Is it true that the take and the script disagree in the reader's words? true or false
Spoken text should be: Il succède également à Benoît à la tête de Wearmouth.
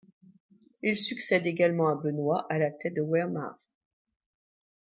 false